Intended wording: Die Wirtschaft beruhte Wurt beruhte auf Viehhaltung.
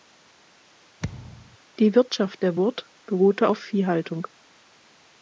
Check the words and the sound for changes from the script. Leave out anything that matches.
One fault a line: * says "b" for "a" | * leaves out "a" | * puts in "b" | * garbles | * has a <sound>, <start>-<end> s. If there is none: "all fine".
* has a thud, 1.0-1.6 s
* says "der" for "beruhte"